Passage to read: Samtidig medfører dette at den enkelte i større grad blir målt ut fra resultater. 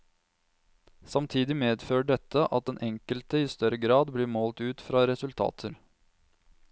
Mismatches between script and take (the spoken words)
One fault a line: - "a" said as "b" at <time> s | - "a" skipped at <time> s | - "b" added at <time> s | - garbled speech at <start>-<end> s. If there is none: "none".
none